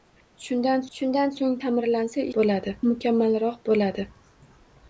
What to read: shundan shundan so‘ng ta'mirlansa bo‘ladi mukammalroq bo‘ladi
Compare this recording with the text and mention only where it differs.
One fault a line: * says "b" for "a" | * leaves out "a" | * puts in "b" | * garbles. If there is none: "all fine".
all fine